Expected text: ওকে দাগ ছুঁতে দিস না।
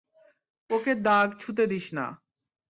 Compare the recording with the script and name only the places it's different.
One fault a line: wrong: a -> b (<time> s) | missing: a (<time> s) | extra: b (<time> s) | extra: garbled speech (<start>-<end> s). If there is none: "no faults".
no faults